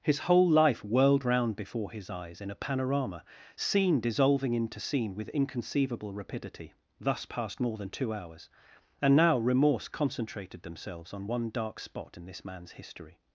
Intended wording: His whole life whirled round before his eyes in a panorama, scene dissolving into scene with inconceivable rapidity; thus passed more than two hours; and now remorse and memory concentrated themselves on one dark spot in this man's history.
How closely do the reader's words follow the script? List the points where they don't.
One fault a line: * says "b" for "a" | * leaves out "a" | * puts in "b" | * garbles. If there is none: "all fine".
* leaves out "and memory"